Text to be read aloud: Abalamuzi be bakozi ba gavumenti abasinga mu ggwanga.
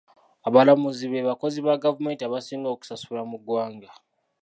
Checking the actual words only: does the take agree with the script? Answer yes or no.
no